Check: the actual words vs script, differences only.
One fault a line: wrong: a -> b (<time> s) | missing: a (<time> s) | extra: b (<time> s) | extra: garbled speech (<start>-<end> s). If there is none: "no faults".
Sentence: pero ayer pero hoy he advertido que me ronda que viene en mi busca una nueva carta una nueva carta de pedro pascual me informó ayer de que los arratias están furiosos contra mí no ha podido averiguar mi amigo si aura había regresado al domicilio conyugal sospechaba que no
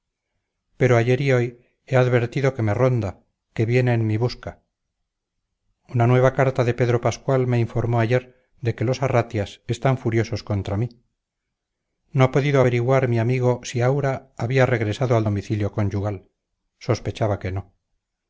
wrong: pero -> y (1.2 s)
missing: una nueva carta (6.6 s)